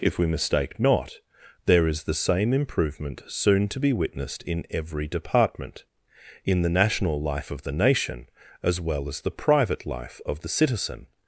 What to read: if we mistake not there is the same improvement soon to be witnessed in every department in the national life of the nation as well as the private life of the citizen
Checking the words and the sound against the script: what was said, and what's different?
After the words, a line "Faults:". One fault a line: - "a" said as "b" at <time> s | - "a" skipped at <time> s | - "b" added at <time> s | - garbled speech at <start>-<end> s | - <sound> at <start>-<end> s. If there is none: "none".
if we mistake not there is the same improvement soon to be witnessed in every department in the national life of the nation as well as the private life of the citizen
Faults:
none